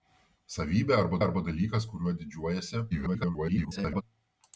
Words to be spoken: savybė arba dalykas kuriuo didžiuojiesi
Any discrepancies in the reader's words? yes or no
yes